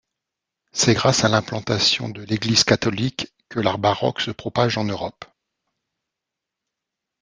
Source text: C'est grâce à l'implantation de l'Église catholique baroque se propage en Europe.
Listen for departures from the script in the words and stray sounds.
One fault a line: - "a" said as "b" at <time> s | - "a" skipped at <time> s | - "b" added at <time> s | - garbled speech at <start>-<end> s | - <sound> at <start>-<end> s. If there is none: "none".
- "que l'art" added at 3.5 s